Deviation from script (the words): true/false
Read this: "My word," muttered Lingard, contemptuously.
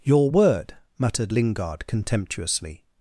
true